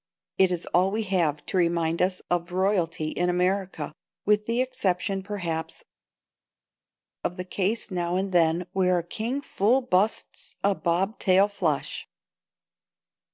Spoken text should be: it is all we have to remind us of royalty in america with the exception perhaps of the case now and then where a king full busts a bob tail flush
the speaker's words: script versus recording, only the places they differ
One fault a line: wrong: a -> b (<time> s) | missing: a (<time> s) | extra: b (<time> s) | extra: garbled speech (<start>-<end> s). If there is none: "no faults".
no faults